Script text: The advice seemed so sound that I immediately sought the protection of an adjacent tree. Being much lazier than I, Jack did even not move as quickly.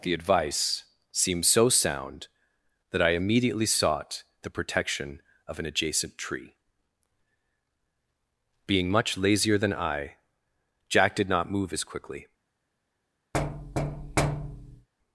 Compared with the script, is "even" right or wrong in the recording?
wrong